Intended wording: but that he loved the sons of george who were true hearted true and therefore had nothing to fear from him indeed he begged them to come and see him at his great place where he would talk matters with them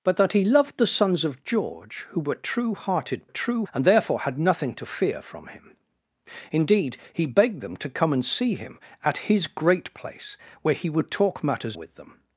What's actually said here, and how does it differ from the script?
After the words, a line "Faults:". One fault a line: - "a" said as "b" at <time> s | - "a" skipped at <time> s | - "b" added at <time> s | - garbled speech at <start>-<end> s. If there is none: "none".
but that he loved the sons of george who were true hearted true and therefore had nothing to fear from him indeed he begged them to come and see him at his great place where he would talk matters with them
Faults:
none